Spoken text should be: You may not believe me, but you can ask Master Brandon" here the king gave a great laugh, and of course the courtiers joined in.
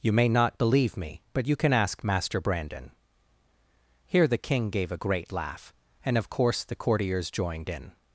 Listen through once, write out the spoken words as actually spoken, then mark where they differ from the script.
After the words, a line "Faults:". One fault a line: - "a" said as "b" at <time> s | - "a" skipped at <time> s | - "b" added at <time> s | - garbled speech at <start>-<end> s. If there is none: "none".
You may not believe me, but you can ask Master Brandon" here the king gave a great laugh, and of course the courtiers joined in.
Faults:
none